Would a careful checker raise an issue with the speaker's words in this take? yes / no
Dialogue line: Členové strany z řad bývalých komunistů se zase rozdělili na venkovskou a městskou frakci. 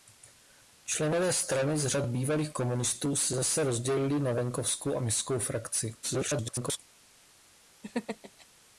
yes